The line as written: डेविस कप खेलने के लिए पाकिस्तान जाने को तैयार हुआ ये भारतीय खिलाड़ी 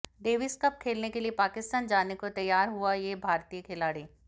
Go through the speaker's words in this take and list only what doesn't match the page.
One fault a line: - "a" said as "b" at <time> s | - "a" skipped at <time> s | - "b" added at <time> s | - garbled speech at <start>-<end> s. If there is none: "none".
none